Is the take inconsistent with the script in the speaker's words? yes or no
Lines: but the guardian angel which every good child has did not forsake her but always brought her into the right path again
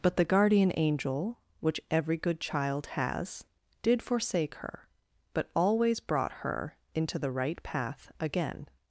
yes